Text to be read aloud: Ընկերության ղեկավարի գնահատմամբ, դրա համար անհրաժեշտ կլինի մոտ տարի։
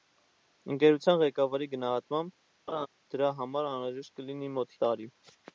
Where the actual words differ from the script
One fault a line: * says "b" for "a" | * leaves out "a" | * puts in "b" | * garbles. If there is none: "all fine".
all fine